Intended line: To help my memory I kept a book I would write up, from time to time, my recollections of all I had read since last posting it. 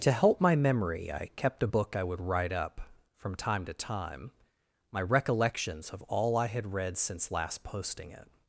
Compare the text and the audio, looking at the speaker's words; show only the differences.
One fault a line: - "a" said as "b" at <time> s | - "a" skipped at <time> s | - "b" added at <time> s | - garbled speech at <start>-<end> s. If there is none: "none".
none